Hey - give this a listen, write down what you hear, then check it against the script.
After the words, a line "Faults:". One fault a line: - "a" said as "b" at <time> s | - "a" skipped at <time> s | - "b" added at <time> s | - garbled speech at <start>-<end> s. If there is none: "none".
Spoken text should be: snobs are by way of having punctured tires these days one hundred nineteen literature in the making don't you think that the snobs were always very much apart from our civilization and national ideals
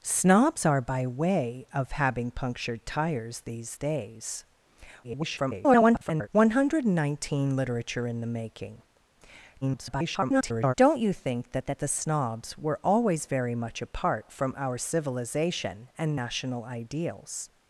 snobs are by way of having punctured tires these days [garbled] one hundred nineteen literature in the making [garbled] don't you think that that the snobs were always very much apart from our civilization and national ideals
Faults:
- garbled speech at 5.0-6.3 s
- garbled speech at 9.6-10.7 s
- "that" added at 11.7 s